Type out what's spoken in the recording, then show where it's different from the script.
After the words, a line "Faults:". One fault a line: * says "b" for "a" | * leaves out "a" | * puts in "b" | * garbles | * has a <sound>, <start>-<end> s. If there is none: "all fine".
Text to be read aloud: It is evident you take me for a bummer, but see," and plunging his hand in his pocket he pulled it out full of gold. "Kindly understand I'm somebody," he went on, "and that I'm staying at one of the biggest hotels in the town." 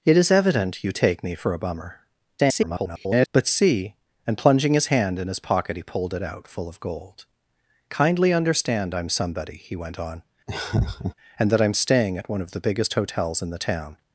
It is evident you take me for a bummer, [garbled] but see," and plunging his hand in his pocket he pulled it out full of gold. "Kindly understand I'm somebody," he went on, "and that I'm staying at one of the biggest hotels in the town."
Faults:
* garbles
* has a laugh, 10.5-11.1 s